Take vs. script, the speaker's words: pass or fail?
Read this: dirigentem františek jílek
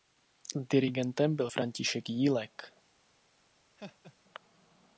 fail